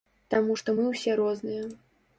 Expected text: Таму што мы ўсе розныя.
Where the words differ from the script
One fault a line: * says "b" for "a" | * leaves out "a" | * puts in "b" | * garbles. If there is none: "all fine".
all fine